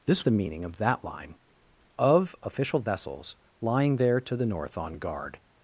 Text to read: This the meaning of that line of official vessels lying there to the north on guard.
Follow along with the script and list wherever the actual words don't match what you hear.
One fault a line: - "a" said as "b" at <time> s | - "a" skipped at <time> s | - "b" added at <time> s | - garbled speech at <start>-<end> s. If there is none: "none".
none